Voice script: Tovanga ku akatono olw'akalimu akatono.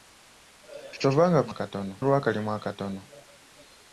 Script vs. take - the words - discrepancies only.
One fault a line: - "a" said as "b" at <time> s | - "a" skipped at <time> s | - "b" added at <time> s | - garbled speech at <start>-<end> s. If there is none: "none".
none